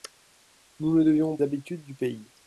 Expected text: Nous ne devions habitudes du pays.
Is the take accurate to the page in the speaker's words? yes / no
yes